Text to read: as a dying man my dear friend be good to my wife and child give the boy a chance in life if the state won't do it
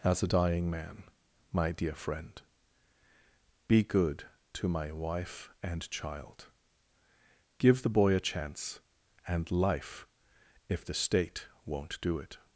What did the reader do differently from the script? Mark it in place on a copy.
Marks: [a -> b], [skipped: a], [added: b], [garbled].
as a dying man my dear friend be good to my wife and child give the boy a chance [in -> and] life if the state won't do it